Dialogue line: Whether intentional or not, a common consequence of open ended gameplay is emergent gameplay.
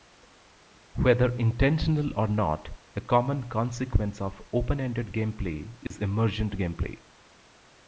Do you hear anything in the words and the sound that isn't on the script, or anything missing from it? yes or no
yes